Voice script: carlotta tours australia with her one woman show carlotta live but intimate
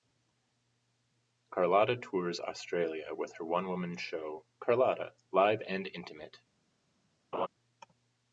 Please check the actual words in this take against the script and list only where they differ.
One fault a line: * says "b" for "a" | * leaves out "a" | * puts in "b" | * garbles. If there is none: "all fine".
* says "and" for "but"